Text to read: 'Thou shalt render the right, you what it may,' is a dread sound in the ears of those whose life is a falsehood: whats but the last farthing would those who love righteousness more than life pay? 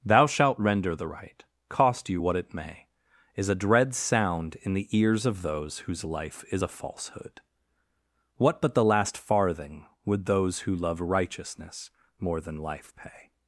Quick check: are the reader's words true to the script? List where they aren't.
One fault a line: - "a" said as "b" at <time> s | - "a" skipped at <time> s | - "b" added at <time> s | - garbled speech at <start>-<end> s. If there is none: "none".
- "cost" added at 1.7 s
- "whats" said as "what" at 8.4 s